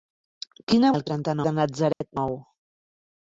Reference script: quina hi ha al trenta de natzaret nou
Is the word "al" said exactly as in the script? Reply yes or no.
yes